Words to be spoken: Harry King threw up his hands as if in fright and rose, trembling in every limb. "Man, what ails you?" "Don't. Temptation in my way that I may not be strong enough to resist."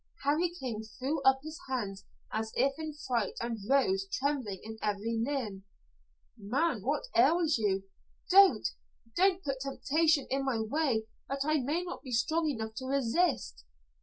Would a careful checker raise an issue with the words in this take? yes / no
yes